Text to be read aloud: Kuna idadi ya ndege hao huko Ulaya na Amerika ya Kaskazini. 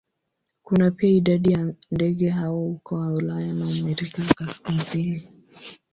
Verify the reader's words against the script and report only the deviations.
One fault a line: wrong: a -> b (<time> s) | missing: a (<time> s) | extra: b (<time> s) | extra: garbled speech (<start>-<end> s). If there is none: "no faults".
extra: pia (0.9 s)